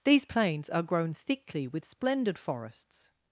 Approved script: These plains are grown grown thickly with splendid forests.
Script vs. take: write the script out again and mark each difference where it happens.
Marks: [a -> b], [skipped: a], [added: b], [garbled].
These plains are grown [skipped: grown] thickly with splendid forests.